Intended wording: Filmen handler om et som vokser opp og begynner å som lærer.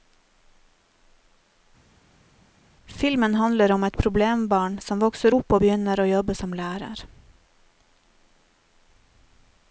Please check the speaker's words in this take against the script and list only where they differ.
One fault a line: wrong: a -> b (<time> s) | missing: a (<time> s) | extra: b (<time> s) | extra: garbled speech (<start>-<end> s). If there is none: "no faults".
extra: problembarn (4.0 s)
extra: jobbe (6.1 s)